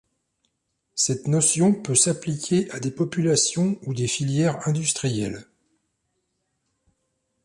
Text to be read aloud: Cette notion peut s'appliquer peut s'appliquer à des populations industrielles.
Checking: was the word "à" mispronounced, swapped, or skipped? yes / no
yes